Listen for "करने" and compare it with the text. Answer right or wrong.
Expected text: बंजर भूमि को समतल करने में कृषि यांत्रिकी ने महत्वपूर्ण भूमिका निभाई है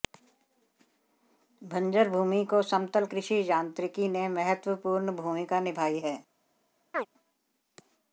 wrong